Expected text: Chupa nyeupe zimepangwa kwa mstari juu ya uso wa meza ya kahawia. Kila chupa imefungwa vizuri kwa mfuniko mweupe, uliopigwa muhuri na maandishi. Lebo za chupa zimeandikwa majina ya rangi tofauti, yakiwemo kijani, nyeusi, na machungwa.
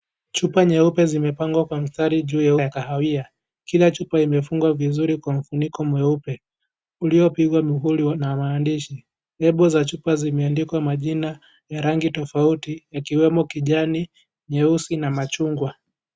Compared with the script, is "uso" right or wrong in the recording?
wrong